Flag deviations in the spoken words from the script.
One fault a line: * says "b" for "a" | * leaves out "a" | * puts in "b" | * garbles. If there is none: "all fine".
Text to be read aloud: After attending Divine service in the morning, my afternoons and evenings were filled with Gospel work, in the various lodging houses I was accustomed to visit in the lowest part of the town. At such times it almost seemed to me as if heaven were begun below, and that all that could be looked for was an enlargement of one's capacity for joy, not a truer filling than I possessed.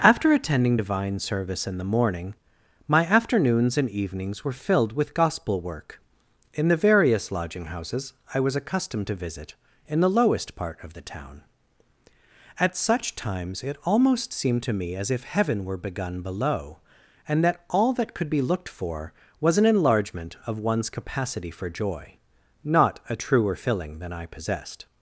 all fine